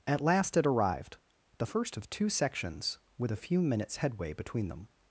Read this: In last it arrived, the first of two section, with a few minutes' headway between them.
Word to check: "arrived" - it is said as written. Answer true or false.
true